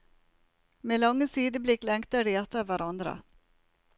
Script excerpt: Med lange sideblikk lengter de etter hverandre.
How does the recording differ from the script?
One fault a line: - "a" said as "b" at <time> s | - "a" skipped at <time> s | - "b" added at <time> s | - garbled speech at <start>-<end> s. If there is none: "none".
none